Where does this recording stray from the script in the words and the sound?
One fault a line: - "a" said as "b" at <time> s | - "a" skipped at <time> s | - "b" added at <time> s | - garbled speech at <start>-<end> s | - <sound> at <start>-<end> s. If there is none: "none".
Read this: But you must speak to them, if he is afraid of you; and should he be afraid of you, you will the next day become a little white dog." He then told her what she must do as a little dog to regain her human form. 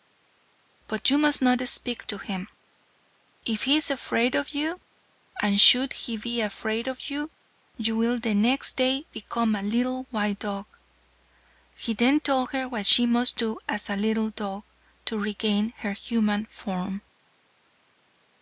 - "not" added at 1.4 s
- "them" said as "him" at 2.2 s